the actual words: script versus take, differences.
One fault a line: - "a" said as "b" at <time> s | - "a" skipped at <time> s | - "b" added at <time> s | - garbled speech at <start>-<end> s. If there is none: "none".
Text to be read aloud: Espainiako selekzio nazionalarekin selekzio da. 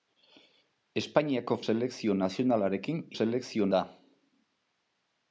none